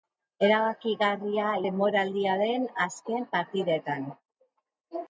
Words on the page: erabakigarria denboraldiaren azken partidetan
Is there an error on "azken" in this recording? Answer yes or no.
no